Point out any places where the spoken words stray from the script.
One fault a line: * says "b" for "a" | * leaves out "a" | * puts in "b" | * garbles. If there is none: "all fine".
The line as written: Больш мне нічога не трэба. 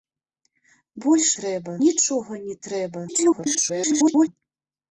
* says "трэба" for "мне"
* garbles